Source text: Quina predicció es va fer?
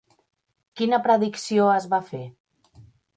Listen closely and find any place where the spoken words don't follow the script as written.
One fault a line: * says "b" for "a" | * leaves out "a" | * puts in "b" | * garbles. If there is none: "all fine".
all fine